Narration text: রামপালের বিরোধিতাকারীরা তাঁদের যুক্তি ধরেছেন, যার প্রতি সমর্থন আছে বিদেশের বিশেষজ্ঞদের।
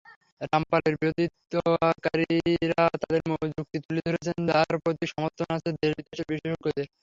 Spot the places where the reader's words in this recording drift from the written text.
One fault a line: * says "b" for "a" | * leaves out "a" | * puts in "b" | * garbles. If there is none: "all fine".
* puts in "তুলে"
* puts in "দেশ"